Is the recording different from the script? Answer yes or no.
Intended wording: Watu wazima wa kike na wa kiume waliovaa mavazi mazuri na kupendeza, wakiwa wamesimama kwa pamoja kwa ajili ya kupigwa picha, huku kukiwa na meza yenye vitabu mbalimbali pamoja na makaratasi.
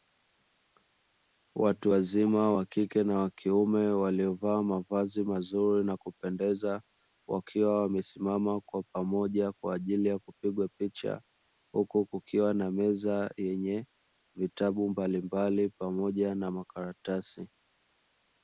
no